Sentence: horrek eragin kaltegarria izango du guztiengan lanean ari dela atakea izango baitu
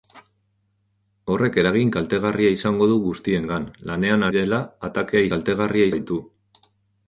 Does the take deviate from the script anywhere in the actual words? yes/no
yes